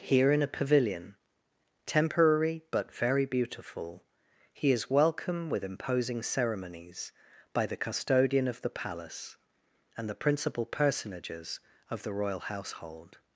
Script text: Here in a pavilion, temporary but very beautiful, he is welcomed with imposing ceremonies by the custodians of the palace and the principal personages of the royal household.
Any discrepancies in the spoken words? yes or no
yes